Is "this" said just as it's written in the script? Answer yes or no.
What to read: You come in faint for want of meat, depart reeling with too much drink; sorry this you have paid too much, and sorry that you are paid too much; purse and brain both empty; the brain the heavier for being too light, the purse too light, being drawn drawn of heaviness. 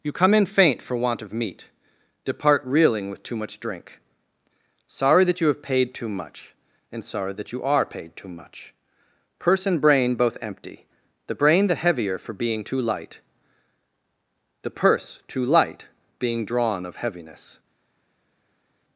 no